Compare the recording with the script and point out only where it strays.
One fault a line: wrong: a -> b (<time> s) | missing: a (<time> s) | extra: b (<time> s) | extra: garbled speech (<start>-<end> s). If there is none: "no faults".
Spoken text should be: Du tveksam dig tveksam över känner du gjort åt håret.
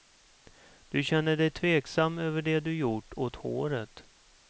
wrong: tveksam -> känner (1.0 s)
wrong: känner -> det (2.4 s)